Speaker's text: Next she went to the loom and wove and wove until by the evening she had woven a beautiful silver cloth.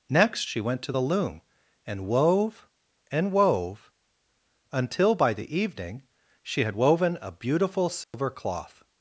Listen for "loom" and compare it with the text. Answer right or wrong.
right